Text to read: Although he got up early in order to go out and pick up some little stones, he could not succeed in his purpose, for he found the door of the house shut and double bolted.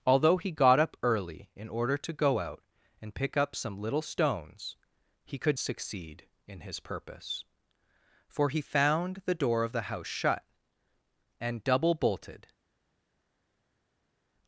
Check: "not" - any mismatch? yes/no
yes